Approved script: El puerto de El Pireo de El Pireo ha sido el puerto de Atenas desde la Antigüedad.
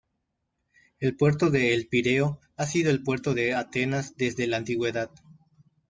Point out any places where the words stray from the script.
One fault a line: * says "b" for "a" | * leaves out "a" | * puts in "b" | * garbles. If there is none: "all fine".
* leaves out "de El Pireo"